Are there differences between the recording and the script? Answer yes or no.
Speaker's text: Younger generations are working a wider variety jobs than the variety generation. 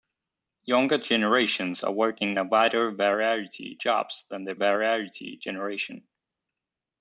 no